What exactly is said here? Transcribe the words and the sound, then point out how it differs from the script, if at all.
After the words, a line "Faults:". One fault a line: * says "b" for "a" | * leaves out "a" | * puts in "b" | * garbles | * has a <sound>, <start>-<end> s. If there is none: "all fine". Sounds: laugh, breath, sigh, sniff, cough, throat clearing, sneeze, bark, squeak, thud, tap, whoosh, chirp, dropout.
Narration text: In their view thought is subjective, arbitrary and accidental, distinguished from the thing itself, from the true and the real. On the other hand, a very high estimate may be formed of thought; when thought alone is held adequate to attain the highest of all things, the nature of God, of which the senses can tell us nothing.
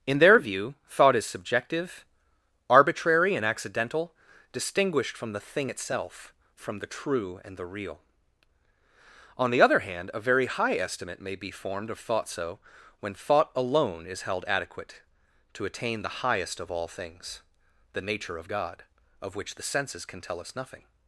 In their view thought is subjective, arbitrary and accidental, distinguished from the thing itself, from the true and the real. On the other hand, a very high estimate may be formed of thought; so when thought alone is held adequate to attain the highest of all things, the nature of God, of which the senses can tell us nothing.
Faults:
* puts in "so"